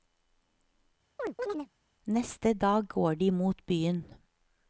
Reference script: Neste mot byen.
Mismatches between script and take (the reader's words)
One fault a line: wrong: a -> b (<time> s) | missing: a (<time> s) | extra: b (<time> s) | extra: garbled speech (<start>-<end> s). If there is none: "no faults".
extra: dag går de (2.5 s)